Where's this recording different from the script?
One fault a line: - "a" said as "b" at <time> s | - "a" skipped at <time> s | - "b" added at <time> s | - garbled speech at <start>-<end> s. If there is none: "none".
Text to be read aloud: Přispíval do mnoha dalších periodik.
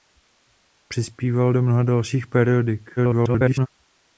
- garbled speech at 3.0-3.7 s